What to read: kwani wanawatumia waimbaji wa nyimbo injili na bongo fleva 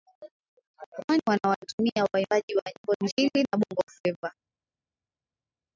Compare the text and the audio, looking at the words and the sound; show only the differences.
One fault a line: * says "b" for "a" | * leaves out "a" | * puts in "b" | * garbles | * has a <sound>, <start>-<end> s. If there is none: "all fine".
all fine